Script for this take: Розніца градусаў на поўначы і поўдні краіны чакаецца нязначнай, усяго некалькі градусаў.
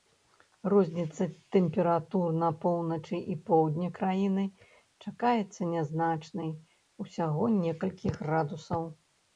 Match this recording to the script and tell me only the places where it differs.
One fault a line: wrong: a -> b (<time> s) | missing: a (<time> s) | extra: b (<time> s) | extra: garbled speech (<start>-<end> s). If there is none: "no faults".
wrong: градусаў -> тэмператур (1.6 s)